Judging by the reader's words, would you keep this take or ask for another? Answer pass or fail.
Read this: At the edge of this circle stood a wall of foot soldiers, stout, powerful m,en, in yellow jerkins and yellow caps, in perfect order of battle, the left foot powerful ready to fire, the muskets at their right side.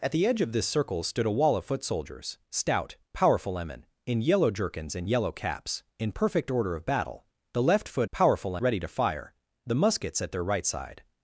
pass